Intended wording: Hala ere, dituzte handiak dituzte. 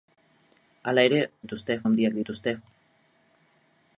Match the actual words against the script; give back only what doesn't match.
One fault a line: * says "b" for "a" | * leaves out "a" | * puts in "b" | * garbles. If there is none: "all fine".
all fine